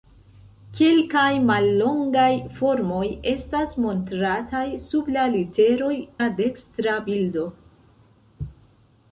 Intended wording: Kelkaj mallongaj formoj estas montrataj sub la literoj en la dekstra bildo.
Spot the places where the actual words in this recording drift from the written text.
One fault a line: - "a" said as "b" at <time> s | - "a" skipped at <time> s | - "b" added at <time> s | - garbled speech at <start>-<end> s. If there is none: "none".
- "en" skipped at 5.9 s